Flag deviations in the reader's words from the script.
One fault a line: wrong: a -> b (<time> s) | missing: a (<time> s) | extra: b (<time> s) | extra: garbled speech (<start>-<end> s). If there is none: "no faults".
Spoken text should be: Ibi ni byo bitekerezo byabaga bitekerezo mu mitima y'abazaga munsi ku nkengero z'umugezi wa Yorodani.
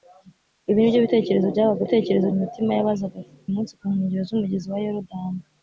no faults